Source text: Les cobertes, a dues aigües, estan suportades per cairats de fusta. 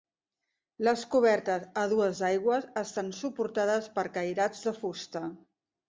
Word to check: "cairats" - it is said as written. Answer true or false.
true